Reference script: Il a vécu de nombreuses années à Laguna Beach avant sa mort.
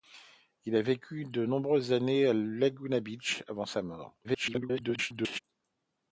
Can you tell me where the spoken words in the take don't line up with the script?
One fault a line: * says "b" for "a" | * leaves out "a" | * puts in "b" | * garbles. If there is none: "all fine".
* garbles